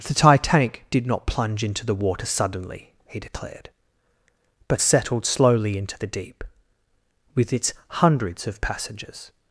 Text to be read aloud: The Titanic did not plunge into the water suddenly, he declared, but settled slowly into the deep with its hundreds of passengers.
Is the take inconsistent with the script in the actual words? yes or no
no